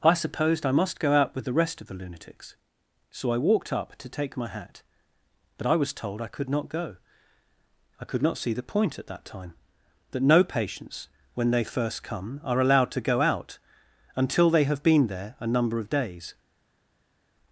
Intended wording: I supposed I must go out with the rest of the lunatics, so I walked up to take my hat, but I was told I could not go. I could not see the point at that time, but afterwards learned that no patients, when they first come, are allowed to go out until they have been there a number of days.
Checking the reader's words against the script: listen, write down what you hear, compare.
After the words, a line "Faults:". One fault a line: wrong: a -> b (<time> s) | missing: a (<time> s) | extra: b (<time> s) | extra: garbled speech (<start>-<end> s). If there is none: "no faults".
I supposed I must go out with the rest of the lunatics, so I walked up to take my hat, but I was told I could not go. I could not see the point at that time, that no patients, when they first come, are allowed to go out until they have been there a number of days.
Faults:
missing: but afterwards learned (9.5 s)